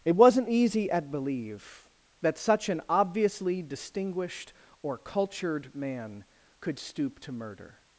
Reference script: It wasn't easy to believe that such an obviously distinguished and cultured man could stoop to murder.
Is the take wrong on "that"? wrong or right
right